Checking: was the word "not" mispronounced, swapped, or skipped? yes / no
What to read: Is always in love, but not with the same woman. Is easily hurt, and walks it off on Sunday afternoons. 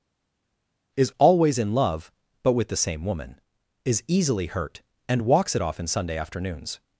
yes